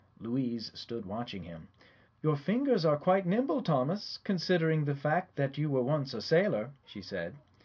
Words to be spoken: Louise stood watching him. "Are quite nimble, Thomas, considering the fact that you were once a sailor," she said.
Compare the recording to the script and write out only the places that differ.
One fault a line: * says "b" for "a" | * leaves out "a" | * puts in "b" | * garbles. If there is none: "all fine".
* puts in "Your fingers"